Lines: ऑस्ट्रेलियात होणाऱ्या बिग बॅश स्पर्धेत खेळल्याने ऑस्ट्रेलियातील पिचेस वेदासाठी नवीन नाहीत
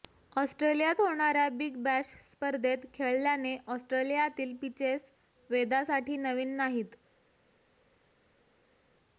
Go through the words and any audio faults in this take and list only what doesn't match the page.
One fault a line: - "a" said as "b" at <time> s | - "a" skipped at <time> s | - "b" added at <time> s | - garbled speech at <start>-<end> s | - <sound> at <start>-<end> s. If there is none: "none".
none